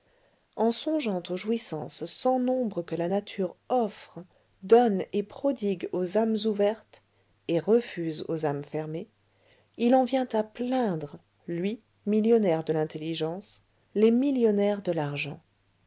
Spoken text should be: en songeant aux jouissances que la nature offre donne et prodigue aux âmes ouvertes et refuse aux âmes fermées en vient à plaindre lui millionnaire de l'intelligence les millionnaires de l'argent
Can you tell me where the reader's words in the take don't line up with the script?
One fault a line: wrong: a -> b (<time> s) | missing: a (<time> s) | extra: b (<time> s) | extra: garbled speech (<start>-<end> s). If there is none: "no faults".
extra: sans nombre (2.0 s)
extra: il (9.8 s)